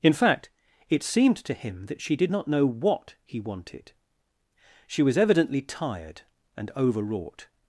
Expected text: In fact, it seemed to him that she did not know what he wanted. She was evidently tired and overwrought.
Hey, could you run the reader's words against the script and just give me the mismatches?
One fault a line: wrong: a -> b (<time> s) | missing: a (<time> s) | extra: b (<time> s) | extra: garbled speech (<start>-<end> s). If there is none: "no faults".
no faults